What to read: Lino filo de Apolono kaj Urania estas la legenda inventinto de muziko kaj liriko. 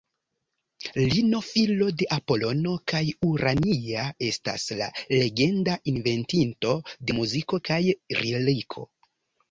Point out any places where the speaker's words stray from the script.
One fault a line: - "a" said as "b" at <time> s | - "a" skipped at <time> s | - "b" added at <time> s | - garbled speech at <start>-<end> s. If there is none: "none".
none